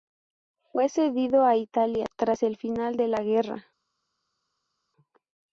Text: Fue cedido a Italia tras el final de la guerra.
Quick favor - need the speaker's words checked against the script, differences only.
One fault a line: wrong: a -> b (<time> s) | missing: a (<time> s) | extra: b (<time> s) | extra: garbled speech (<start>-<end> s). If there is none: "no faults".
no faults